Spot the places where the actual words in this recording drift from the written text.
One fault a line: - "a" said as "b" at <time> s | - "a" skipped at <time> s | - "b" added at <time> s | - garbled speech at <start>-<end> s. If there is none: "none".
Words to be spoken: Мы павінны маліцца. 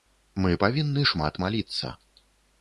- "шмат" added at 1.1 s